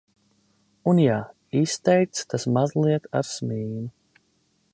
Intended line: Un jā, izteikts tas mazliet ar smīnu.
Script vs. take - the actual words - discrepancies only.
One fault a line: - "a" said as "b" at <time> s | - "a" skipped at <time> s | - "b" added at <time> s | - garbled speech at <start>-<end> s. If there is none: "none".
none